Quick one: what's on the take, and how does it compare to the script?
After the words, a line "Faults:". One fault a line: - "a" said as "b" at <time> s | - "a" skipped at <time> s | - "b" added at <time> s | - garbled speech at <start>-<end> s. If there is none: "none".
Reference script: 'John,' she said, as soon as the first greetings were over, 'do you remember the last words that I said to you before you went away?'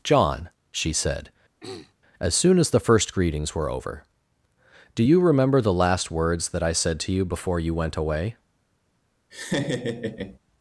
'John,' she said, as soon as the first greetings were over, 'do you remember the last words that I said to you before you went away?'
Faults:
none